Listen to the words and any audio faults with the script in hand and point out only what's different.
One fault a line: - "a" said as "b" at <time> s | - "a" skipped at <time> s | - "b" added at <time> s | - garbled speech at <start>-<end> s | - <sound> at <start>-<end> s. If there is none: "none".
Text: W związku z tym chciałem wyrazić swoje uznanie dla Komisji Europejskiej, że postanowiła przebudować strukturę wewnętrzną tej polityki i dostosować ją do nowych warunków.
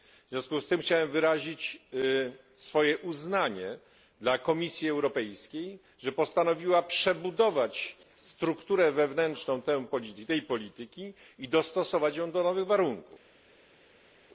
none